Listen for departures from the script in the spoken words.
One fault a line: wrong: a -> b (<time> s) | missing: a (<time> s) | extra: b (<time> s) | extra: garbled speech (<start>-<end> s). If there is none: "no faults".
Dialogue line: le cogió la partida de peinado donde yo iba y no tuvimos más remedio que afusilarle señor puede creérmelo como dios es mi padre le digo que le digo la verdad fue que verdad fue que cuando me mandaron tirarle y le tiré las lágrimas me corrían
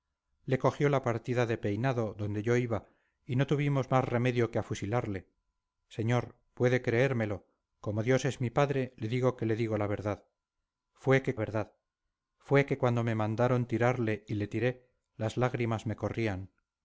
no faults